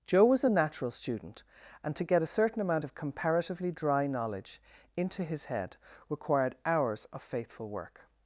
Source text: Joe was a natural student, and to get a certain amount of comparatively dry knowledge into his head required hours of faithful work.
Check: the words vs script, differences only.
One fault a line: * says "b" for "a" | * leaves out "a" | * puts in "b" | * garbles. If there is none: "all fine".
all fine